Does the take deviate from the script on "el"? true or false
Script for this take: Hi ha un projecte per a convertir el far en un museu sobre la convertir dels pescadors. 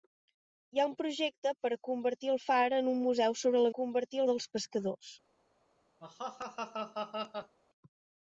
false